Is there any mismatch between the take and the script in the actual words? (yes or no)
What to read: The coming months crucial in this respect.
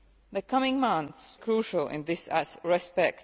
no